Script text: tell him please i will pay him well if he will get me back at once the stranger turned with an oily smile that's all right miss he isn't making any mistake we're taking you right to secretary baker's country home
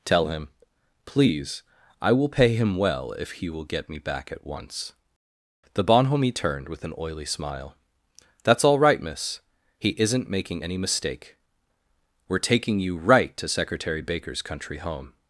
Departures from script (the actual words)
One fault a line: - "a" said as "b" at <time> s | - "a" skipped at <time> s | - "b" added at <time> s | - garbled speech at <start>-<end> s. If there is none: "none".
- "stranger" said as "bonhomie" at 5.8 s